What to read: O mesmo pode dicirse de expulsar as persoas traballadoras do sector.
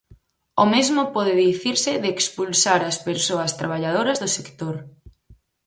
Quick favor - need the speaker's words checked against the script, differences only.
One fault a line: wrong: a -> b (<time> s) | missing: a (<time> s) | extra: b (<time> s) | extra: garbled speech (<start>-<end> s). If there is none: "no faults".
no faults